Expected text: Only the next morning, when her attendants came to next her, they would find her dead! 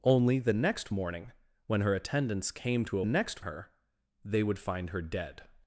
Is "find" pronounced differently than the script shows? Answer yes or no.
no